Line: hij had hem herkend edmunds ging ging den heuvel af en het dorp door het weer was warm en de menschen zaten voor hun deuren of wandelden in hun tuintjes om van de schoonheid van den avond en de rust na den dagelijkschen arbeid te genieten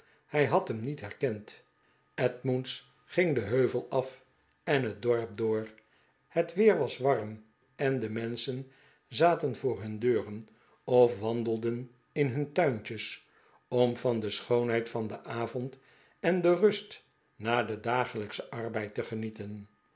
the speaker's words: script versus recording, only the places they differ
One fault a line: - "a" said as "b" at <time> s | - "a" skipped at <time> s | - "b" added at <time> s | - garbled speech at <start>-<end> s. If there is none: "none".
- "niet" added at 0.8 s
- "ging" skipped at 3.4 s